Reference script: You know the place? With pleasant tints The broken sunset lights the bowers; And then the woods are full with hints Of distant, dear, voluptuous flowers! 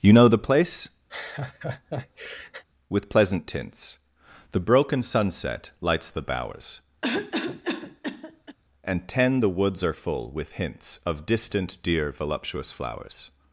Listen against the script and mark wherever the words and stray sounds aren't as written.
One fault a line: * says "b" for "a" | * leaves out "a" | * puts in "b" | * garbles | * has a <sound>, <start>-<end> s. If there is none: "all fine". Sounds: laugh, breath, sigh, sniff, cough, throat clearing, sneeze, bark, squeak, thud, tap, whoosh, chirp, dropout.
* has a laugh, 1.1-2.6 s
* has a cough, 7.0-8.6 s
* says "ten" for "then"